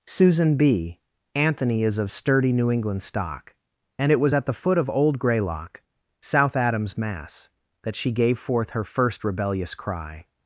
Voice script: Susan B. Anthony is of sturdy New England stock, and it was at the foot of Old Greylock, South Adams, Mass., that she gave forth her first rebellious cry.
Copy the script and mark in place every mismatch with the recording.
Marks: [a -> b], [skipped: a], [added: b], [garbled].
Susan B. Anthony is of sturdy New England stock, and it was at the foot of Old Greylock, South Adams, Mass., that she gave forth her first rebellious cry.